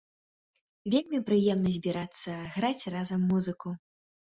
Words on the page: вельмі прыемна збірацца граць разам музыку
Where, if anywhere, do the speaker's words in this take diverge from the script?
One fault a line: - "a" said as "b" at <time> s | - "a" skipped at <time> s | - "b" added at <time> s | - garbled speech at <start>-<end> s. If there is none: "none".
none